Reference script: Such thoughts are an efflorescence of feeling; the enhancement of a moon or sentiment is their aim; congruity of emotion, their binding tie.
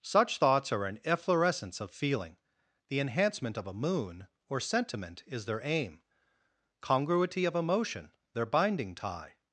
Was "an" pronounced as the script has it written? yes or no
yes